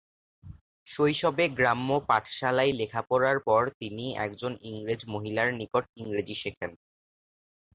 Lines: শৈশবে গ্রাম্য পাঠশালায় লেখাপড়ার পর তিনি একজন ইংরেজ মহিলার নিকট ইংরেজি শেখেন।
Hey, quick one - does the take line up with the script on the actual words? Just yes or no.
yes